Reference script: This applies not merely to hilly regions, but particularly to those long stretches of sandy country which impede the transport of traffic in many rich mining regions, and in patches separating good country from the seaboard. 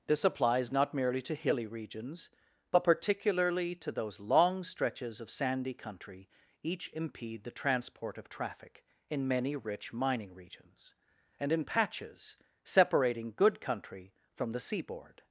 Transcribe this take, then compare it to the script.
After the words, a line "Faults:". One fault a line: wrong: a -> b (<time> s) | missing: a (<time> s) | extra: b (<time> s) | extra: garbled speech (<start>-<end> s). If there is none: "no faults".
This applies not merely to hilly regions, but particularly to those long stretches of sandy country each impede the transport of traffic in many rich mining regions, and in patches separating good country from the seaboard.
Faults:
wrong: which -> each (6.6 s)